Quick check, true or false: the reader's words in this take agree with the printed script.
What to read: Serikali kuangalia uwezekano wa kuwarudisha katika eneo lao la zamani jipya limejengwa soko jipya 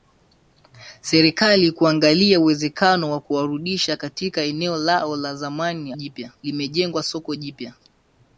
true